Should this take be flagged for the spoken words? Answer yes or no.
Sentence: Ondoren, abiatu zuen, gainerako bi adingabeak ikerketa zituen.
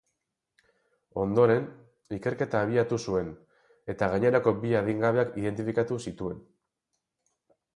yes